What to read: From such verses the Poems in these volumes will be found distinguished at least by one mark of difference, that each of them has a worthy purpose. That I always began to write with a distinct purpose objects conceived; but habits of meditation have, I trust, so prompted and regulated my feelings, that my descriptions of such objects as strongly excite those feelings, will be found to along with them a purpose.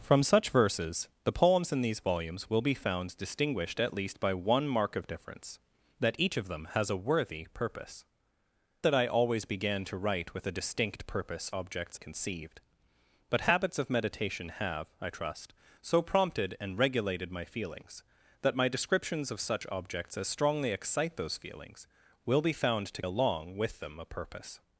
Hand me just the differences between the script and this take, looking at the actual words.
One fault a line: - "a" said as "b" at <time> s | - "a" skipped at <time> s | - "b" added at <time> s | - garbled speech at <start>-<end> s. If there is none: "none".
none